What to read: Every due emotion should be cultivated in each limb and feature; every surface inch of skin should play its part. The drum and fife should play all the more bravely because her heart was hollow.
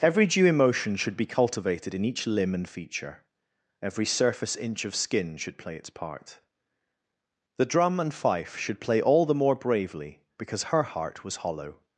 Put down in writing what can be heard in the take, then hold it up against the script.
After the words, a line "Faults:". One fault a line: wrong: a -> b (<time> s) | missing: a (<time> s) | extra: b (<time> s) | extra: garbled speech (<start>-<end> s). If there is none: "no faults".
Every due emotion should be cultivated in each limb and feature; every surface inch of skin should play its part. The drum and fife should play all the more bravely because her heart was hollow.
Faults:
no faults